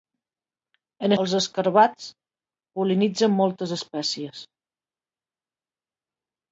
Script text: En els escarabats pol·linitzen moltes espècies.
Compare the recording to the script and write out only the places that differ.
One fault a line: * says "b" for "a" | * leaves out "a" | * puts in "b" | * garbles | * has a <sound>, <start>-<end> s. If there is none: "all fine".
all fine